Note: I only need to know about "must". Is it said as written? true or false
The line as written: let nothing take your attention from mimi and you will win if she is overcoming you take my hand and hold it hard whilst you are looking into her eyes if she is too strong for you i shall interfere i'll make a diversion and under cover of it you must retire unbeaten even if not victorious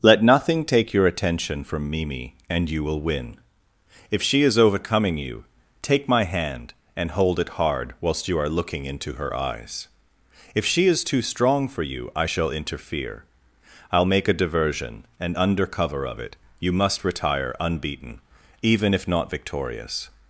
true